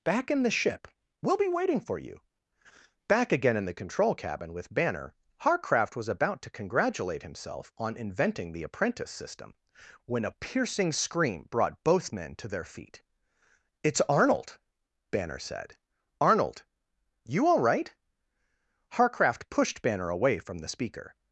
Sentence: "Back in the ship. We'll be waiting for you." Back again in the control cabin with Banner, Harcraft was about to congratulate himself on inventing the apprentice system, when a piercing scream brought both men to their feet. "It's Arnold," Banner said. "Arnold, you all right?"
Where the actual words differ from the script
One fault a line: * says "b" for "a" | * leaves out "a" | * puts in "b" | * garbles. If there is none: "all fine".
* puts in "Harcraft pushed Banner away from the speaker"